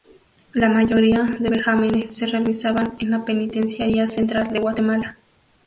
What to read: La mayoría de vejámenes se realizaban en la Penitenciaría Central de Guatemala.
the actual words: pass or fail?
pass